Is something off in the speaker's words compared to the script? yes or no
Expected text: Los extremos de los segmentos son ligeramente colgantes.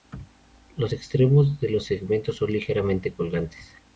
no